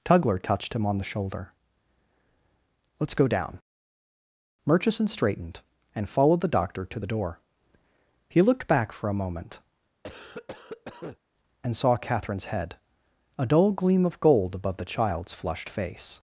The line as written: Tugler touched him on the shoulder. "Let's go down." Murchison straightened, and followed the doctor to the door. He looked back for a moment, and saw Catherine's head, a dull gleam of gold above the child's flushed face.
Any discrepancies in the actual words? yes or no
no